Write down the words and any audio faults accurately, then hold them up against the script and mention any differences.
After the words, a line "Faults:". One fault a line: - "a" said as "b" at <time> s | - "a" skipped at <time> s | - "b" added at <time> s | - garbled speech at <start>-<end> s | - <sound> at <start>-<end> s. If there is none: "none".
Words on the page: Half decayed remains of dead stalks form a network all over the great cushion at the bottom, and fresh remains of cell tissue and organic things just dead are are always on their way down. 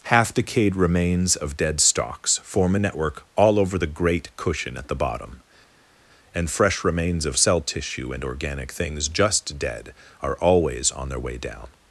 Half decayed remains of dead stalks form a network all over the great cushion at the bottom, and fresh remains of cell tissue and organic things just dead are always on their way down.
Faults:
- "are" skipped at 10.4 s